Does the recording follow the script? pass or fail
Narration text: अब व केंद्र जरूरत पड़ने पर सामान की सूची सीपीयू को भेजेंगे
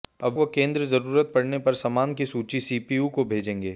pass